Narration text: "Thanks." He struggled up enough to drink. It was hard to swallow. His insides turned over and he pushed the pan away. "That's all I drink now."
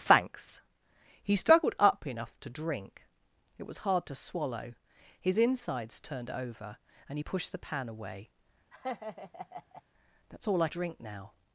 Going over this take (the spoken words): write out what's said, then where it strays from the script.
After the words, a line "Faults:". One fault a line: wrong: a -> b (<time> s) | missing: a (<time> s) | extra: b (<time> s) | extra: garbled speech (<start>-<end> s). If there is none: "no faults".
"Thanks." He struggled up enough to drink. It was hard to swallow. His insides turned over and he pushed the pan away. "That's all I drink now."
Faults:
no faults